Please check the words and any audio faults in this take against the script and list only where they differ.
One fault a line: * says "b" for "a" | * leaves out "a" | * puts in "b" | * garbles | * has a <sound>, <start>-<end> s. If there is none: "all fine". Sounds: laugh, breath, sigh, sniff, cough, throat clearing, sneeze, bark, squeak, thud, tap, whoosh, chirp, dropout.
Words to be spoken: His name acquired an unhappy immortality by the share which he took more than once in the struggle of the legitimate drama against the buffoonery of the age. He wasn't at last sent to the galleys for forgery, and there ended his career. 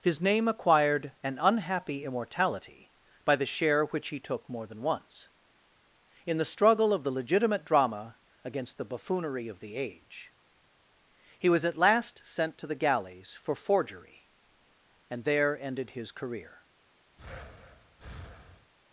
* says "was" for "wasn't"
* has a breath, 17.2-18.7 s